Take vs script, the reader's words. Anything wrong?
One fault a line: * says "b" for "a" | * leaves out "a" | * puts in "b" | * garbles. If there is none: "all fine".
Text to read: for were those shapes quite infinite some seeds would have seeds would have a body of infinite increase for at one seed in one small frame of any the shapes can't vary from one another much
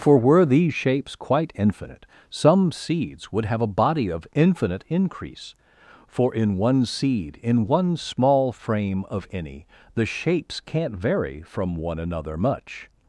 * says "these" for "those"
* leaves out "seeds would have"
* says "in" for "at"